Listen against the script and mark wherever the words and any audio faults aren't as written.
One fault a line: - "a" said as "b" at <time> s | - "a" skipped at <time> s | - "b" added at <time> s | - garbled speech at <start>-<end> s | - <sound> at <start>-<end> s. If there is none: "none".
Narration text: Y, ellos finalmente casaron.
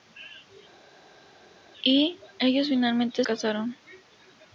none